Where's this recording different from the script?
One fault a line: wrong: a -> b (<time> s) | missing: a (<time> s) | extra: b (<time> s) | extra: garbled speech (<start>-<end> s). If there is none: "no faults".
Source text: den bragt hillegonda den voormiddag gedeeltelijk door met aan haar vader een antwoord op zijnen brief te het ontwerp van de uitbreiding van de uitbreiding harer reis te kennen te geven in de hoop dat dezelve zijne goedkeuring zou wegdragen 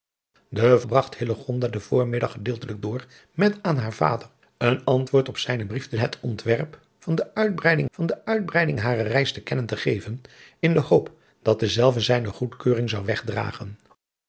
no faults